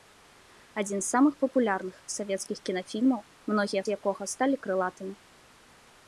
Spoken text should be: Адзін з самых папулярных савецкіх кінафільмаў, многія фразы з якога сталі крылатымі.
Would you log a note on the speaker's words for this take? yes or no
yes